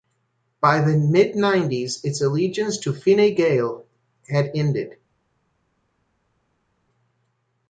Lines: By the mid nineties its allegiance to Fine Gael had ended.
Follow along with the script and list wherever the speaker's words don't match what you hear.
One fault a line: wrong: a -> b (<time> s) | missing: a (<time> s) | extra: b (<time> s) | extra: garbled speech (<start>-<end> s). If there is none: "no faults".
no faults